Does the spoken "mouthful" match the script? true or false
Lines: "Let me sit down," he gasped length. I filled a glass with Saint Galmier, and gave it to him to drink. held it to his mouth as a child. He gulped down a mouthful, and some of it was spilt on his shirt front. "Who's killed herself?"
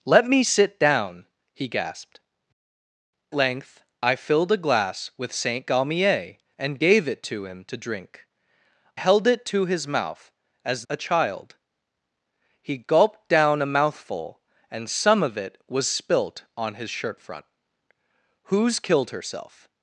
true